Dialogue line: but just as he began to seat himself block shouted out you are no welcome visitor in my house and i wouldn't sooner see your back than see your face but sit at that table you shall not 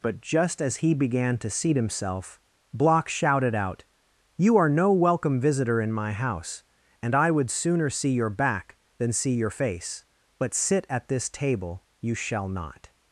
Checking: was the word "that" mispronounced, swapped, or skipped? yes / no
yes